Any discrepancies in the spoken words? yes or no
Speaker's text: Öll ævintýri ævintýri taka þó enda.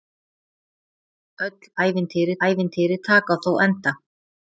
no